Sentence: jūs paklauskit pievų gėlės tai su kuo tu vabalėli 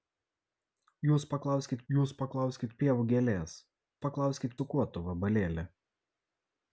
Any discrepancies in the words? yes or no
yes